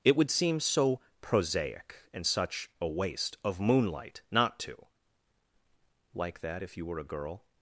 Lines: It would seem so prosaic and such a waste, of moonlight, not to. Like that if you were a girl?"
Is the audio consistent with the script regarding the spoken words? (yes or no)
yes